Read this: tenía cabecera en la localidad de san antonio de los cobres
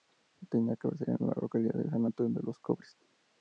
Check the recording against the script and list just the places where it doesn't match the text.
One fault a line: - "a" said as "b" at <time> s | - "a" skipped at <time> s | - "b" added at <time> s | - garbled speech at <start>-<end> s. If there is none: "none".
none